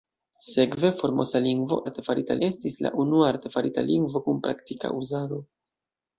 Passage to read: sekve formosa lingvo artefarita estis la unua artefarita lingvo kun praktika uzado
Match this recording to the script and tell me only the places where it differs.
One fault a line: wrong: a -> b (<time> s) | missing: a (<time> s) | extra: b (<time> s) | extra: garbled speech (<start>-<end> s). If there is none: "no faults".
no faults